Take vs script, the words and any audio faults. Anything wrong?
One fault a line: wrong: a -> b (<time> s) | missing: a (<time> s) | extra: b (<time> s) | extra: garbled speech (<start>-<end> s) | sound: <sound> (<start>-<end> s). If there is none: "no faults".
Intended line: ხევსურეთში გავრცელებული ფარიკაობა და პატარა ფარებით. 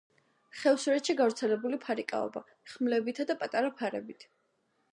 extra: ხმლებითა (2.7 s)